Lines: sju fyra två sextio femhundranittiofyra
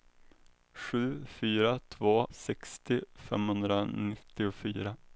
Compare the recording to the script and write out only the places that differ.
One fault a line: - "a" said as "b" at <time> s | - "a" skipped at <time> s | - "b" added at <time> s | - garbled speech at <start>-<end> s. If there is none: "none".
none